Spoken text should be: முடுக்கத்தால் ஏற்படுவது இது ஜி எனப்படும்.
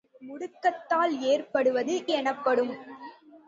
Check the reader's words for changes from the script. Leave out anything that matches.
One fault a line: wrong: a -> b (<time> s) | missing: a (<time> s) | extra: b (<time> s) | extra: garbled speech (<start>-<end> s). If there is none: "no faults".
missing: இது ஜி (1.9 s)